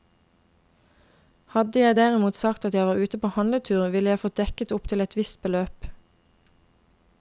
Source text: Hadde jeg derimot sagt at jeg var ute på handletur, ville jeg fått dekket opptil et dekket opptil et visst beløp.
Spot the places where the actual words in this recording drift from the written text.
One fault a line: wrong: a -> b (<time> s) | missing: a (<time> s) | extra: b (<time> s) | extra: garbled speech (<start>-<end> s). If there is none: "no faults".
missing: dekket opptil et (5.2 s)